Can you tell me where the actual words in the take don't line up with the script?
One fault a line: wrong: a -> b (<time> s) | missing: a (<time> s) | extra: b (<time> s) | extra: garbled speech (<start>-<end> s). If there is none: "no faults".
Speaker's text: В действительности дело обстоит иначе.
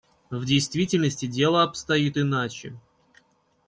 no faults